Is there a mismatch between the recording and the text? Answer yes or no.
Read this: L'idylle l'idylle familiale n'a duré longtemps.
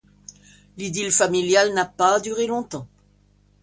yes